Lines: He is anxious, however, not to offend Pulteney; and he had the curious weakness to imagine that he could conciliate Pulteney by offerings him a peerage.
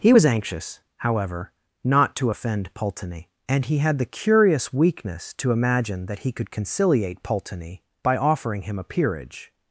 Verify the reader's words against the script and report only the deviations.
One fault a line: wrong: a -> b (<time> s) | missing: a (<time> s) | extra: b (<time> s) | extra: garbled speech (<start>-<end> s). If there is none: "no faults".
wrong: is -> was (0.1 s)
wrong: offerings -> offering (8.1 s)